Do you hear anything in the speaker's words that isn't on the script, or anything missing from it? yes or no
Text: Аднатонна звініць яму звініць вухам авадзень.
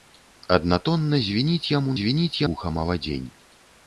no